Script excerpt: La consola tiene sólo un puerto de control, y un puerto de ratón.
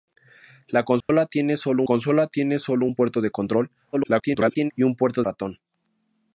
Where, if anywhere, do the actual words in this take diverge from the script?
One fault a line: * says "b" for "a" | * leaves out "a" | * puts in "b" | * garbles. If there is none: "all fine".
* puts in "consola tiene sólo"
* garbles
* leaves out "de"